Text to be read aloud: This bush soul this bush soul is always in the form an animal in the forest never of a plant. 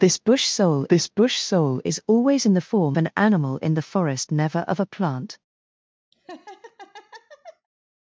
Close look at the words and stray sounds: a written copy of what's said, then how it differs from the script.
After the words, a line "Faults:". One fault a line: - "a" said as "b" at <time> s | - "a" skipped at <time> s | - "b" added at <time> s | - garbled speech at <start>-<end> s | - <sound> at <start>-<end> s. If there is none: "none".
This bush soul this bush soul is always in the form an animal in the forest never of a plant.
Faults:
- laugh at 6.1-7.7 s